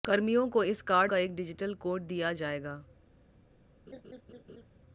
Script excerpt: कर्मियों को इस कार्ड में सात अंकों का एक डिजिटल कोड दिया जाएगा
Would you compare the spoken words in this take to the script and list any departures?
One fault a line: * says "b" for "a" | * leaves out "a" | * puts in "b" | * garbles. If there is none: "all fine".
* leaves out "में सात अंकों"